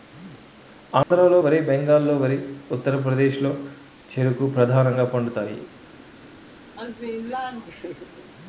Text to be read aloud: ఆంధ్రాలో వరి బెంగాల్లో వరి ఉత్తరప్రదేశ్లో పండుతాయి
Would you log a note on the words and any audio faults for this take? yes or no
yes